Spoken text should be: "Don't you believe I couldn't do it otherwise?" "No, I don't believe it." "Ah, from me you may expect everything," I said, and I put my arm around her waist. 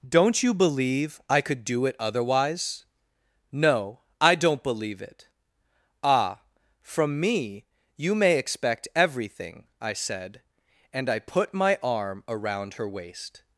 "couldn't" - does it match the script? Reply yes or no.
no